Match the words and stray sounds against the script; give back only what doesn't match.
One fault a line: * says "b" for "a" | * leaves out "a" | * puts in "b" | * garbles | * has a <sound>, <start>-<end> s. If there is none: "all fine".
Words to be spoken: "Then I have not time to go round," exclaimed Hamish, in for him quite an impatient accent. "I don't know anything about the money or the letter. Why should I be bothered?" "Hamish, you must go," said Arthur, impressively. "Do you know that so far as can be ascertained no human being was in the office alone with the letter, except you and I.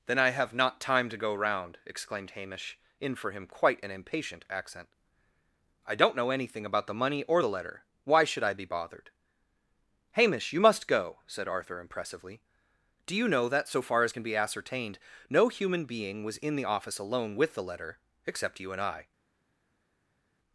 all fine